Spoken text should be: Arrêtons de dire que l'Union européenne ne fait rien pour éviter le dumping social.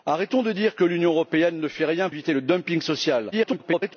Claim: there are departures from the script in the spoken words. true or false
true